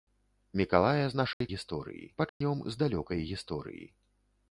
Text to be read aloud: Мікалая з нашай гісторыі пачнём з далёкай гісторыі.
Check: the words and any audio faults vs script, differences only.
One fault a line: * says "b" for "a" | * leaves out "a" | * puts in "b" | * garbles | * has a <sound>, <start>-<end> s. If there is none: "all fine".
* has a dropout, 1.3-1.4 s
* has a dropout, 2.3-2.4 s